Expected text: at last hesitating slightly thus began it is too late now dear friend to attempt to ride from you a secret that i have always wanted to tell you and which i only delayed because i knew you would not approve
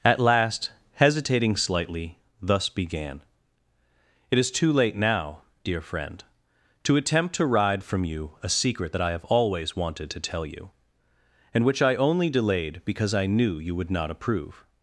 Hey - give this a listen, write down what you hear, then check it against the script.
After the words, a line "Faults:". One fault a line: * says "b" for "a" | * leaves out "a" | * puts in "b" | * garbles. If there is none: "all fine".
at last hesitating slightly thus began it is too late now dear friend to attempt to ride from you a secret that i have always wanted to tell you and which i only delayed because i knew you would not approve
Faults:
all fine